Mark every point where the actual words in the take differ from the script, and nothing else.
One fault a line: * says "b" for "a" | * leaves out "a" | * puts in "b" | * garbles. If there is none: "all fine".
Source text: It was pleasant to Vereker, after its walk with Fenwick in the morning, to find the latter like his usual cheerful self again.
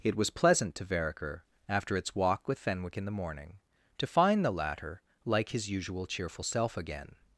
all fine